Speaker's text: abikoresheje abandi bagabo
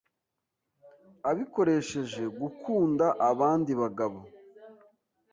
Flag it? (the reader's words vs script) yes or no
yes